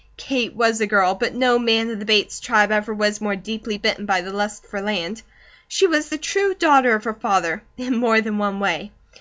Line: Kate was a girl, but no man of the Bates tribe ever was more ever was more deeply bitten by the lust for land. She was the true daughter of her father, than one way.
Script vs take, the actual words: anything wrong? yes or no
yes